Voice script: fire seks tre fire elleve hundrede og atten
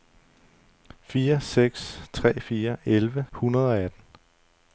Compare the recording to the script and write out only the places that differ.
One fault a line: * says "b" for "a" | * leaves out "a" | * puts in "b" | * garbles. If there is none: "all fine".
all fine